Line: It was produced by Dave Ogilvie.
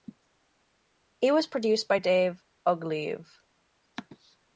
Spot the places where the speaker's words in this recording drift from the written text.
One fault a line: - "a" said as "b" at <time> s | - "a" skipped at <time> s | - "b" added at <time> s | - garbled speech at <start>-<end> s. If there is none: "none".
none